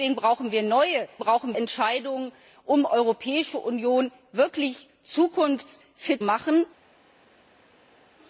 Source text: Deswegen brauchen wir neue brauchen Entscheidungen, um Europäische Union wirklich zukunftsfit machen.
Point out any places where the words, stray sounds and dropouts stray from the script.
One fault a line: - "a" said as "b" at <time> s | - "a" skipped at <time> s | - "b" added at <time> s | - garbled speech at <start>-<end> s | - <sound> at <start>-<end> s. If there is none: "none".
none